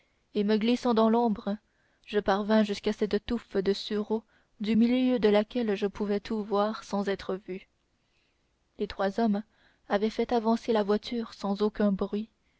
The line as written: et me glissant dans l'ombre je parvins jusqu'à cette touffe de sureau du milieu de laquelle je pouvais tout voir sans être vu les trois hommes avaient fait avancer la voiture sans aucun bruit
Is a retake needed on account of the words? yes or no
no